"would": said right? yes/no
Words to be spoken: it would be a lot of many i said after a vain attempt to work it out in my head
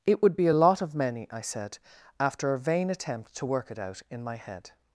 yes